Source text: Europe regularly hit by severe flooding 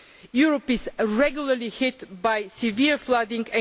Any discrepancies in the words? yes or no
yes